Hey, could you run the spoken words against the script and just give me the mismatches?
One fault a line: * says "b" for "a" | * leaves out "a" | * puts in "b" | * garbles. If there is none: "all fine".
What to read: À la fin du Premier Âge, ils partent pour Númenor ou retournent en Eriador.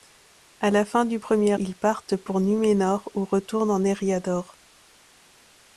* leaves out "Âge"